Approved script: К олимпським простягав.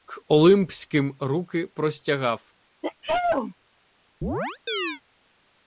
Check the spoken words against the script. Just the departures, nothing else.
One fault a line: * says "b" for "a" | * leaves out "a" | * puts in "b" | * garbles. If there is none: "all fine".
* puts in "руки"